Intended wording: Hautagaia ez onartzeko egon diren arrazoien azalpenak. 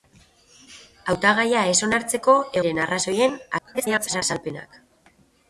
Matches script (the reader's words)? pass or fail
fail